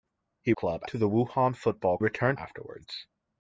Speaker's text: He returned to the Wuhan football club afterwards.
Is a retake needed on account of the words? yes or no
yes